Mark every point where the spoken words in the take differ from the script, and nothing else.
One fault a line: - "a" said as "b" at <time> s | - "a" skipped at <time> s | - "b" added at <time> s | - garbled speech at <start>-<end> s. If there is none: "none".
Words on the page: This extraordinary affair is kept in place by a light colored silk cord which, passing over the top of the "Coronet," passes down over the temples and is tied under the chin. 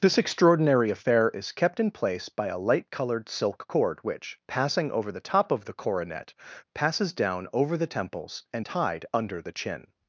- "is" skipped at 8.7 s